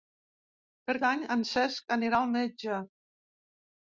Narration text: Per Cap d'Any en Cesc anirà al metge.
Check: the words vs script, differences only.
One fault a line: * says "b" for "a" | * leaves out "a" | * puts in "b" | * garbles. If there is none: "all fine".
* leaves out "Cap"